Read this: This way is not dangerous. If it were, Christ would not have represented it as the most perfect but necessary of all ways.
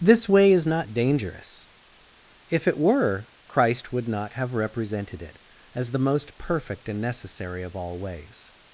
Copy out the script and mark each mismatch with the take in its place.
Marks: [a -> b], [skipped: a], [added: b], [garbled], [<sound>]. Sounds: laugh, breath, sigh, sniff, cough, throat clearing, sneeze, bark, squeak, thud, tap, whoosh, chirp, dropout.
This way is not dangerous. If it were, Christ would not have represented it as the most perfect [but -> and] necessary of all ways.